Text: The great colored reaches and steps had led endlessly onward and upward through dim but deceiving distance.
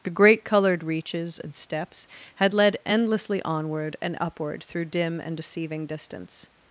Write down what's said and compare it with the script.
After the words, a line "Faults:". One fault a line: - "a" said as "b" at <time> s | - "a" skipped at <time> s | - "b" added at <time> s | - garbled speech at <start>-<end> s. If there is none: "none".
The great colored reaches and steps had led endlessly onward and upward through dim and deceiving distance.
Faults:
- "but" said as "and" at 5.2 s